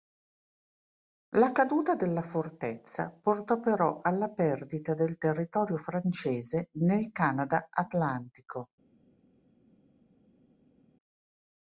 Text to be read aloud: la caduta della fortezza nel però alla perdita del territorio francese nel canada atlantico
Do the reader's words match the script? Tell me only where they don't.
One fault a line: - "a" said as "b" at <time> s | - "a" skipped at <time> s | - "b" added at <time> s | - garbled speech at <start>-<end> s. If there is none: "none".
- "nel" said as "portò" at 3.1 s